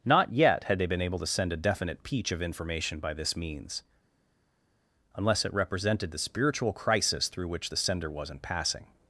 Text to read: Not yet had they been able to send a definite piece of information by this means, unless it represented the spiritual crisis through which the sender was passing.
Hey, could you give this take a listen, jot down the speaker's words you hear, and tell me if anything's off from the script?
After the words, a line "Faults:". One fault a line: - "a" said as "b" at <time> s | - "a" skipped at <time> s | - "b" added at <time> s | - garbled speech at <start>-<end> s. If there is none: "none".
Not yet had they been able to send a definite peach of information by this means, unless it represented the spiritual crisis through which the sender wasn't passing.
Faults:
- "piece" said as "peach" at 2.0 s
- "was" said as "wasn't" at 8.1 s